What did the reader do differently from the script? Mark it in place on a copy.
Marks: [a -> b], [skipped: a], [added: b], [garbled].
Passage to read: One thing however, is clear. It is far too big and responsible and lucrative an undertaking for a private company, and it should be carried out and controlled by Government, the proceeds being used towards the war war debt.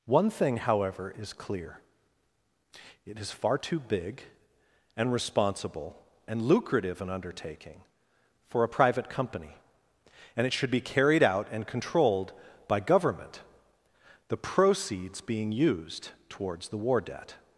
One thing however, is clear. It is far too big and responsible and lucrative an undertaking for a private company, and it should be carried out and controlled by Government, the proceeds being used towards the war [skipped: war] debt.